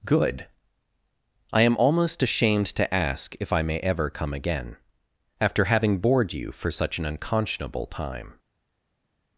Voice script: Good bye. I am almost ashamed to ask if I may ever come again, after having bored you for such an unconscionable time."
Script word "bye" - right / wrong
wrong